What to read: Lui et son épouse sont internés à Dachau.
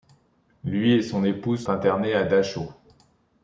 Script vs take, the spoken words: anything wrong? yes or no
yes